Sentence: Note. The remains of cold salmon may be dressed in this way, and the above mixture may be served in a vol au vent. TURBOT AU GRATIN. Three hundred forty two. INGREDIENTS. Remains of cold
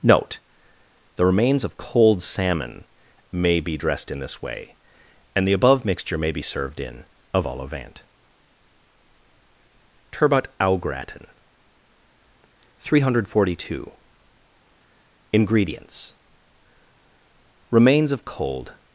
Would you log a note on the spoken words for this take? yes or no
no